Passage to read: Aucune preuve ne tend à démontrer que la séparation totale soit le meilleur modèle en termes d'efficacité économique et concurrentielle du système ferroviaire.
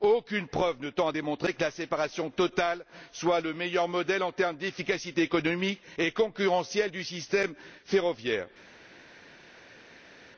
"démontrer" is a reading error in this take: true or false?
false